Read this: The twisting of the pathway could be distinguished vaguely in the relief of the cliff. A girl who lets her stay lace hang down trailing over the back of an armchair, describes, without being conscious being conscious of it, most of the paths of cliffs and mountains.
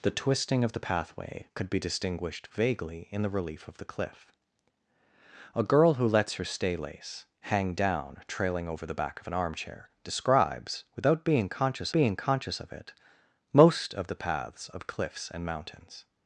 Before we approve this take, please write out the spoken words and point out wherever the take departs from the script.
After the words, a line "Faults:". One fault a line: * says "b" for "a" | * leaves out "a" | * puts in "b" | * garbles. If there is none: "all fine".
The twisting of the pathway could be distinguished vaguely in the relief of the cliff. A girl who lets her stay lace hang down trailing over the back of an armchair, describes, without being conscious being conscious of it, most of the paths of cliffs and mountains.
Faults:
all fine